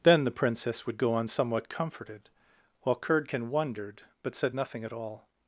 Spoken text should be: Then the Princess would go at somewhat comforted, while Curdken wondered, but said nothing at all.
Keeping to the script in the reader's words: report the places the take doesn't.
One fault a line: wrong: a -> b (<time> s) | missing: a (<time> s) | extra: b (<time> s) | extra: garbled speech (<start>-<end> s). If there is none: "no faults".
wrong: at -> on (1.1 s)